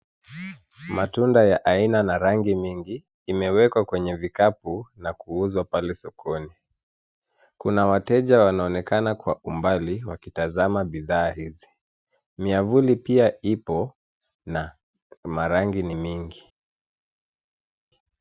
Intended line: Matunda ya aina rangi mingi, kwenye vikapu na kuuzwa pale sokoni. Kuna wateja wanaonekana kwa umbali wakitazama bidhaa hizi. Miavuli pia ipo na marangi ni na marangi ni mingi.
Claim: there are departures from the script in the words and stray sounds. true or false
true